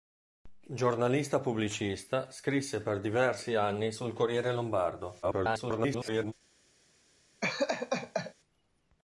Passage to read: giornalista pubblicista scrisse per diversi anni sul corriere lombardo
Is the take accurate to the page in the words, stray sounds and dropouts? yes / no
no